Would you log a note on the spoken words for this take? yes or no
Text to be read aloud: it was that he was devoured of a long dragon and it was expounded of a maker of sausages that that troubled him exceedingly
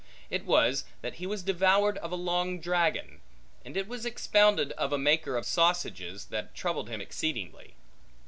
yes